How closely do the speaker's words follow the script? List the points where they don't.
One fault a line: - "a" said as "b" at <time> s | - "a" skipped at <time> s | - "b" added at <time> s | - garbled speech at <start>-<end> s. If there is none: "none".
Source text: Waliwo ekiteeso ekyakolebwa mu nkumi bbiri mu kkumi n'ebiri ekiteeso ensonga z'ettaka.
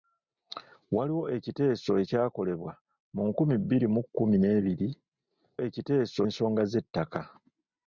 none